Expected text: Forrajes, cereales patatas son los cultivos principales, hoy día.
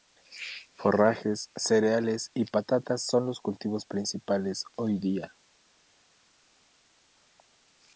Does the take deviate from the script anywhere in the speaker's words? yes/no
yes